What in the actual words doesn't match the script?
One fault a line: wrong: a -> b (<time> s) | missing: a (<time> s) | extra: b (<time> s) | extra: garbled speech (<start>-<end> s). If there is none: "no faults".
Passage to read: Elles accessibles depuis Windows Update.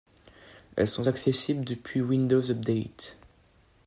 extra: sont (0.9 s)